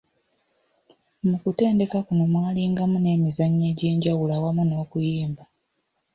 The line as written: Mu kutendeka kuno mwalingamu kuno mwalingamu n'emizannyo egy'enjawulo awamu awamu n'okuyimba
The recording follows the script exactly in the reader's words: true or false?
false